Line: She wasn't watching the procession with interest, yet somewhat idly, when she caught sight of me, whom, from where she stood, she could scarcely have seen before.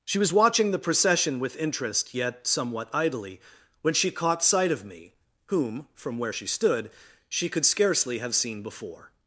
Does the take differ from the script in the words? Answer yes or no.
yes